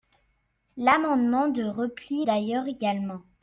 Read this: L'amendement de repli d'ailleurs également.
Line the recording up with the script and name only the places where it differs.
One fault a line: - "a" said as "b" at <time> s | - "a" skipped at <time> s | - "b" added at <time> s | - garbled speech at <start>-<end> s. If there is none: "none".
none